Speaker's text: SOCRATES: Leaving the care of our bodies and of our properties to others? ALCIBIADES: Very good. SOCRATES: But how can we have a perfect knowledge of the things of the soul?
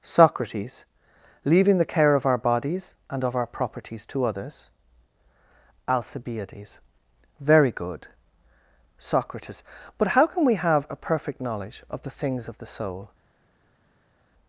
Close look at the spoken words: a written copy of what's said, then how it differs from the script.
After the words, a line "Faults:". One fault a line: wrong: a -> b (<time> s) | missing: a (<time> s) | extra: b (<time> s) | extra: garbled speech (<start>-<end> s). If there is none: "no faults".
SOCRATES: Leaving the care of our bodies and of our properties to others? ALCIBIADES: Very good. SOCRATES: But how can we have a perfect knowledge of the things of the soul?
Faults:
no faults